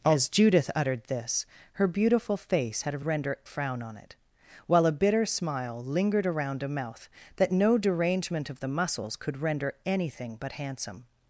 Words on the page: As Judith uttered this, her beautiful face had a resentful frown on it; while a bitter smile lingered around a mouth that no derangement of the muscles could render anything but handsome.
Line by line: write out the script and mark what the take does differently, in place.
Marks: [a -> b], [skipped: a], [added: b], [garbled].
As Judith uttered this, her beautiful face had a [resentful -> render] frown on it; while a bitter smile lingered around a mouth that no derangement of the muscles could render anything but handsome.